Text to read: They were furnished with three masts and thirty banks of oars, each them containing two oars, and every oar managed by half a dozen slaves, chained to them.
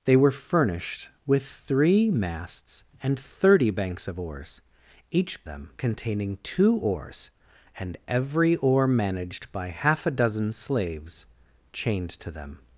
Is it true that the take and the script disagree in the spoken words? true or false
false